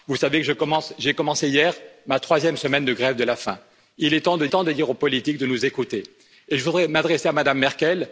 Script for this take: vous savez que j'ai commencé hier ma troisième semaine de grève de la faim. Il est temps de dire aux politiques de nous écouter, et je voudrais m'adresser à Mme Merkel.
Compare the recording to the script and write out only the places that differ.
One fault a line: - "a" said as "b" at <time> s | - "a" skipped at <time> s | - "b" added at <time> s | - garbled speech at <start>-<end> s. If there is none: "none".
- "temps de" added at 4.5 s